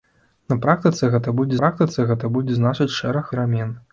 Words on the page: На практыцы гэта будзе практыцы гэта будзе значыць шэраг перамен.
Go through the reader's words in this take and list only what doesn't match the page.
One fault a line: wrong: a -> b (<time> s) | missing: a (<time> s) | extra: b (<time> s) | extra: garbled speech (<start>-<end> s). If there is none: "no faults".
no faults